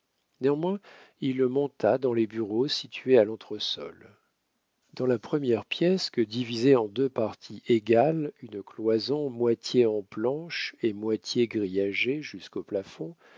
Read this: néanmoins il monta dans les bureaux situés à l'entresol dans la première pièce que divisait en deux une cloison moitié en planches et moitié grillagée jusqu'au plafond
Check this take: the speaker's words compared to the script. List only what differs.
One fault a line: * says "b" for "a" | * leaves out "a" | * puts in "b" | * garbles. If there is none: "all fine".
* puts in "parties égales"